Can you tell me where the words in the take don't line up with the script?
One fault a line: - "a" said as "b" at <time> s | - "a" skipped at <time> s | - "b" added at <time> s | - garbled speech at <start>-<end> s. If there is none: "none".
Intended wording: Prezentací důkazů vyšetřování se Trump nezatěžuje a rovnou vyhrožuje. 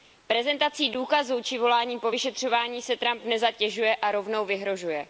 - "či voláním po" added at 1.4 s